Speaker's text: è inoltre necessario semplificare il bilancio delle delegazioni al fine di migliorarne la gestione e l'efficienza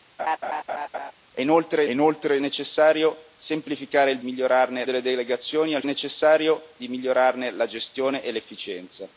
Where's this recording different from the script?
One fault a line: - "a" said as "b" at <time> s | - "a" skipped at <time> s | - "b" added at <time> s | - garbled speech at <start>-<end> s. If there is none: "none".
- "inoltre" added at 1.9 s
- "bilancio" said as "migliorarne" at 4.2 s
- "fine" said as "necessario" at 5.8 s